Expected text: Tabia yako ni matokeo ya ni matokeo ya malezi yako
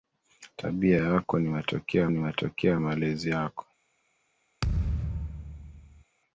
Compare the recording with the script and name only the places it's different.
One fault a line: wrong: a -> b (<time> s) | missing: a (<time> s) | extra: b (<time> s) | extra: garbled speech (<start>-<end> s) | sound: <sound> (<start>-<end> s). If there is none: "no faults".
sound: thud (4.6-6.0 s)